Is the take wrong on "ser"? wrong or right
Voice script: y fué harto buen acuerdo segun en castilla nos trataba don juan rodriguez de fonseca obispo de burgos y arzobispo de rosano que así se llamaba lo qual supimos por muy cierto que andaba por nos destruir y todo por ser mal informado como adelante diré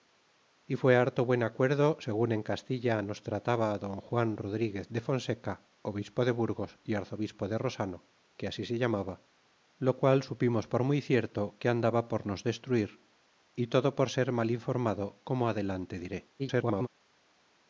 right